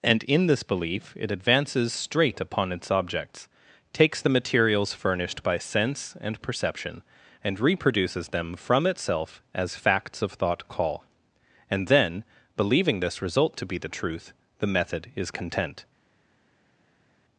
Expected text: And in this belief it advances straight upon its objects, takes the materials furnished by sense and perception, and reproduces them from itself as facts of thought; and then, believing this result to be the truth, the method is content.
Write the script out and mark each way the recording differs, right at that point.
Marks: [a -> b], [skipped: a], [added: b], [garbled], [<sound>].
And in this belief it advances straight upon its objects, takes the materials furnished by sense and perception, and reproduces them from itself as facts of thought; [added: call] and then, believing this result to be the truth, the method is content.